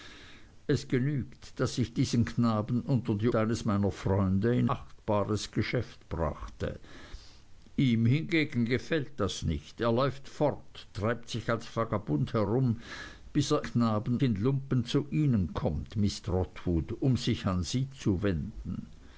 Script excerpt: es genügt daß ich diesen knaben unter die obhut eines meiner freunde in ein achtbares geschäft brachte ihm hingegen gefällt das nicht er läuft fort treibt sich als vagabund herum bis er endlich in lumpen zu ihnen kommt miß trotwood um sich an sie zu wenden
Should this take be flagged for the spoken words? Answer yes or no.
yes